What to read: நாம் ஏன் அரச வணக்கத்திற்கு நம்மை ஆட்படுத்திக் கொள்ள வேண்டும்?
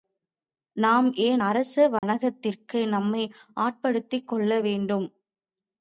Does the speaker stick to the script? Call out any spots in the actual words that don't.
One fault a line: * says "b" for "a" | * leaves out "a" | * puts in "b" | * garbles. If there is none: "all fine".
all fine